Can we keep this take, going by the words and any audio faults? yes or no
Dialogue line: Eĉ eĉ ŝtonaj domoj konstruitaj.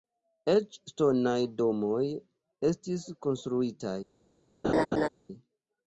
no